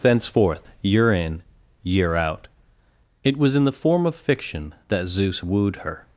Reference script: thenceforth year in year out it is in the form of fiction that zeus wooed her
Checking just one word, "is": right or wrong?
wrong